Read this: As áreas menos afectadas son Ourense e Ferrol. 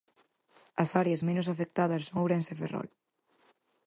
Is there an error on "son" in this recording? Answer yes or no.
no